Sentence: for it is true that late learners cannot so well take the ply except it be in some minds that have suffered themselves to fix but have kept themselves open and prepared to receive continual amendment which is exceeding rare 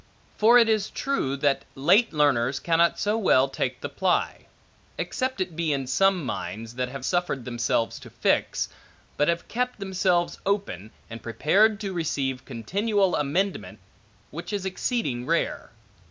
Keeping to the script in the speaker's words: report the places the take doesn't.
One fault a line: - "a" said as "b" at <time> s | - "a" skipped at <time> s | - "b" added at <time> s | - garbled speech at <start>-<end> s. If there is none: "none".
none